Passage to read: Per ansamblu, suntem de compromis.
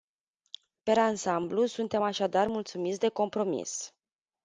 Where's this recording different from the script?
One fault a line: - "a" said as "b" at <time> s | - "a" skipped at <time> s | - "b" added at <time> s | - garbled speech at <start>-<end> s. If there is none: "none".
- "așadar mulțumiți" added at 2.0 s